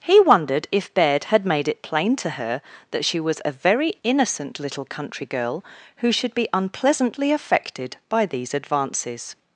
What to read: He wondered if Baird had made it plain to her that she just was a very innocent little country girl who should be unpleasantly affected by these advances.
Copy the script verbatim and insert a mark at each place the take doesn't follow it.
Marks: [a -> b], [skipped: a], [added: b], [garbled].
He wondered if Baird had made it plain to her that she [skipped: just] was a very innocent little country girl who should be unpleasantly affected by these advances.